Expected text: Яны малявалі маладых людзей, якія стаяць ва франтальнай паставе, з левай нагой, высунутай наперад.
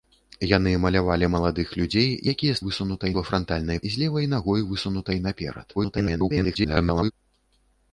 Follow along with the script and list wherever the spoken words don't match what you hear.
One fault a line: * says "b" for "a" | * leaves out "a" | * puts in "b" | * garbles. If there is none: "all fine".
* says "высунутай" for "стаяць"
* leaves out "паставе"
* garbles